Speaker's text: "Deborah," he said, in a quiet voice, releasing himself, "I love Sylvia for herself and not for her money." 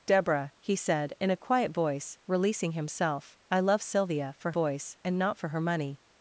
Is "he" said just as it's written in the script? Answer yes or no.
yes